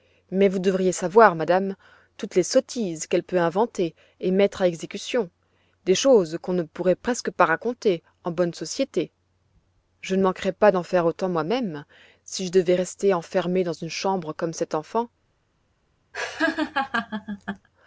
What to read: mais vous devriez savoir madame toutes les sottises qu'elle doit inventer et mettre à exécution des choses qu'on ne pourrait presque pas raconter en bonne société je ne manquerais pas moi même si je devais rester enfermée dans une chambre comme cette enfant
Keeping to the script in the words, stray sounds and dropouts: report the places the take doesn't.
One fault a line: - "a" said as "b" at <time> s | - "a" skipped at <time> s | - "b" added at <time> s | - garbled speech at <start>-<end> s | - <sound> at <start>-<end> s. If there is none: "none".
- "doit" said as "peut" at 3.2 s
- "d'en faire autant" added at 10.7 s
- laugh at 16.1-17.7 s